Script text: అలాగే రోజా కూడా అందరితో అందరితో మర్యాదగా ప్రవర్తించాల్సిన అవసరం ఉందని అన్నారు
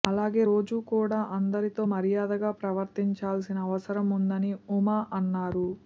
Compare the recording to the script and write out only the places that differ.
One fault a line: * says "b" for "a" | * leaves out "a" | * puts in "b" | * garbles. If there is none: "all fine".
* leaves out "అందరితో"
* puts in "ఉమ"